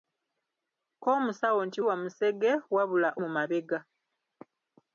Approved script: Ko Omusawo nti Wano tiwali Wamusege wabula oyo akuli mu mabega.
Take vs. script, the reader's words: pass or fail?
fail